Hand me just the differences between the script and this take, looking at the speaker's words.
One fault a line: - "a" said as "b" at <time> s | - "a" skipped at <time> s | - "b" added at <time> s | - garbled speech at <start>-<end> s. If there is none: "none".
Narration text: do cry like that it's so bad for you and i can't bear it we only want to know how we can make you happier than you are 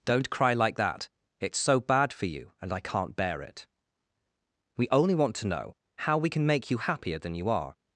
- "do" said as "don't" at 0.1 s